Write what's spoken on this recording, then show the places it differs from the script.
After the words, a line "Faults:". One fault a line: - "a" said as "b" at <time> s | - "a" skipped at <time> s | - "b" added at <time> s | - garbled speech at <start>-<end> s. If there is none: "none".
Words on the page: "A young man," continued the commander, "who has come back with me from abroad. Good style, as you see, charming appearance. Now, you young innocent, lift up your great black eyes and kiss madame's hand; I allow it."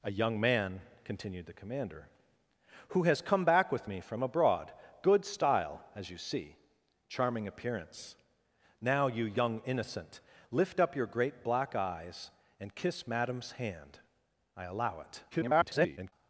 "A young man," continued the commander, "who has come back with me from abroad. Good style, as you see, charming appearance. Now, you young innocent, lift up your great black eyes and kiss madame's hand; I allow it." [garbled]
Faults:
- garbled speech at 15.3-16.1 s